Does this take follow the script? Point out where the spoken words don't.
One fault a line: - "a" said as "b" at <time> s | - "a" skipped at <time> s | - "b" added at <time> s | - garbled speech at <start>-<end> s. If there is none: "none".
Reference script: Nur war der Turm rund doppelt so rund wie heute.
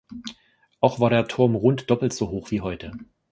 - "Nur" said as "Auch" at 0.8 s
- "rund" said as "hoch" at 2.3 s